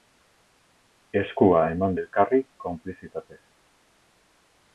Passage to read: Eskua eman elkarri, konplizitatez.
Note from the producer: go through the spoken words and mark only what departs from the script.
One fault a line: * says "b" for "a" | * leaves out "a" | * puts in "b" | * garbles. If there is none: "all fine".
all fine